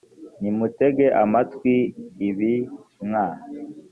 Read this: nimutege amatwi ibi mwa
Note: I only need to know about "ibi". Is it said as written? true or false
true